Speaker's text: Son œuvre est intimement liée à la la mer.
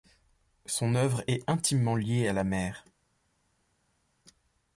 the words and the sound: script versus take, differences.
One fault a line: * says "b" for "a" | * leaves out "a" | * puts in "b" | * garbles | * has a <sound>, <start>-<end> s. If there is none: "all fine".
* leaves out "la"